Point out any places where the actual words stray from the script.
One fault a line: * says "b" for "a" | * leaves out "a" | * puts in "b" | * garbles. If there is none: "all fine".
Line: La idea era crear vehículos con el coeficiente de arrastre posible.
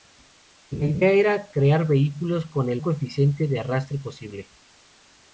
all fine